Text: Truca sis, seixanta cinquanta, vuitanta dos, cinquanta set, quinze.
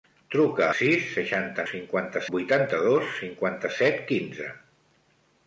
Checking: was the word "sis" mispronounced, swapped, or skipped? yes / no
no